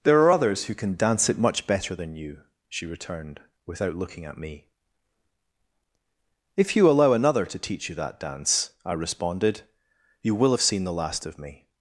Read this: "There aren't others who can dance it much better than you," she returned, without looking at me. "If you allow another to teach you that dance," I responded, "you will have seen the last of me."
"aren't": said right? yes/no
no